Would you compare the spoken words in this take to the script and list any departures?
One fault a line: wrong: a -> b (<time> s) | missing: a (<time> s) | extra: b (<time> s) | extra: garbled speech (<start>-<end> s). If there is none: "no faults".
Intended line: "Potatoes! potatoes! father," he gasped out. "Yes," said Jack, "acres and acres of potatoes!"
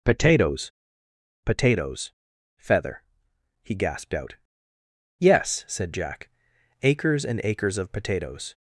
wrong: father -> feather (2.6 s)